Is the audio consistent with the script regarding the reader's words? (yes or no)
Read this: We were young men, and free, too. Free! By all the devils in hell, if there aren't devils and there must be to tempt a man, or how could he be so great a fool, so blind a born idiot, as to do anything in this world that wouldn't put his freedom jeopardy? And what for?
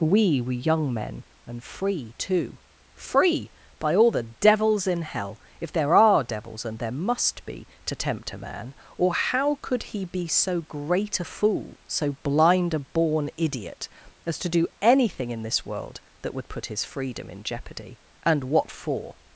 no